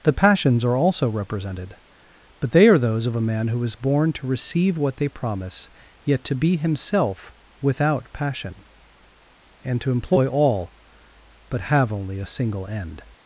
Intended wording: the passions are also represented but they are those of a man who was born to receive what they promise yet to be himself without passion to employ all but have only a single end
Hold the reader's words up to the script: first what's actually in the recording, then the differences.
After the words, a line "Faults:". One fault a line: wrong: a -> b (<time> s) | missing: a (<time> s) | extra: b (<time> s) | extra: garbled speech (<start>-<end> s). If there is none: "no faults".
the passions are also represented but they are those of a man who is born to receive what they promise yet to be himself without passion and to employ all but have only a single end
Faults:
wrong: was -> is (3.6 s)
extra: and (9.6 s)